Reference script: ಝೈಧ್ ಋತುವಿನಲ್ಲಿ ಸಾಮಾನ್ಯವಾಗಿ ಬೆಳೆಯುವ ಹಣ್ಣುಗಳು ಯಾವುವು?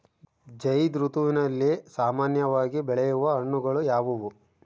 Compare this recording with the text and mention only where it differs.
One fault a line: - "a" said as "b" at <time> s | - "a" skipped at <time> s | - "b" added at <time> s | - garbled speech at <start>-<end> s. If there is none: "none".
none